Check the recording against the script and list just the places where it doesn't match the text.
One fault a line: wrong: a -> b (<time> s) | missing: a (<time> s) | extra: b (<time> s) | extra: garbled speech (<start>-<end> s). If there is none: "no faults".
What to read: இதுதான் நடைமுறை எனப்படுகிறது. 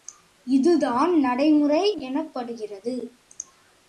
no faults